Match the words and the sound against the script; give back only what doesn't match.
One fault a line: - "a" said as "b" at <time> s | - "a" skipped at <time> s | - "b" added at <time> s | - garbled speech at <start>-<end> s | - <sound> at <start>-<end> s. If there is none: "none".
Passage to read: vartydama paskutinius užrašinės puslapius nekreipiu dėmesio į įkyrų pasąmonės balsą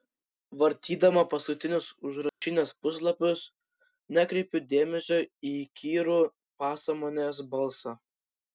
- dropout at 2.3-2.4 s